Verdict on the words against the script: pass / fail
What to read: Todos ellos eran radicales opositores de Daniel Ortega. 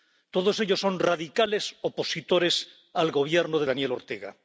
fail